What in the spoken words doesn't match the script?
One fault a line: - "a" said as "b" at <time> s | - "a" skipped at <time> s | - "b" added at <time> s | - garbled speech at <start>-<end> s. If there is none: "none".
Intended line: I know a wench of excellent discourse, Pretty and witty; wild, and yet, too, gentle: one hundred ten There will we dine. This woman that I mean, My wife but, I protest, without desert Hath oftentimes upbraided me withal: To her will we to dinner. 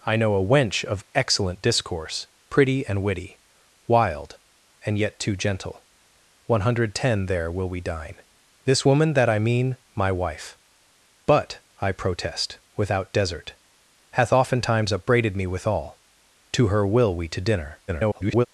- garbled speech at 17.9-18.5 s